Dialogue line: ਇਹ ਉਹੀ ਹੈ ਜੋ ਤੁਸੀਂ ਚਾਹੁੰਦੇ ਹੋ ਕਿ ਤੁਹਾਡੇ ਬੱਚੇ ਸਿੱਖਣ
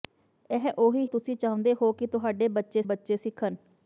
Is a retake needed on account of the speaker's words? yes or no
yes